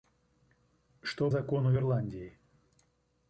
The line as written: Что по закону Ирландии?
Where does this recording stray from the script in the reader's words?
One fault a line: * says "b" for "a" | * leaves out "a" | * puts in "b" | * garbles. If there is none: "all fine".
* leaves out "по"